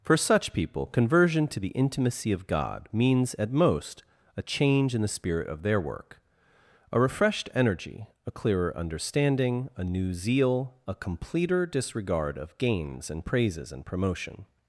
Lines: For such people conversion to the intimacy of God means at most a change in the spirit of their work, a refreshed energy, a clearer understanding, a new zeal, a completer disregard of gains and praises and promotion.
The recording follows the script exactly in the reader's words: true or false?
true